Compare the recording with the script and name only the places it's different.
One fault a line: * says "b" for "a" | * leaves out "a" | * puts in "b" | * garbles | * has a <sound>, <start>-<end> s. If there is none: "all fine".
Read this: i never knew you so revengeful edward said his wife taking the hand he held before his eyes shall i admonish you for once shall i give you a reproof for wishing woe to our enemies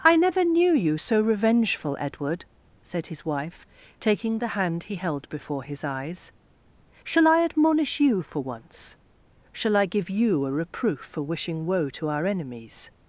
all fine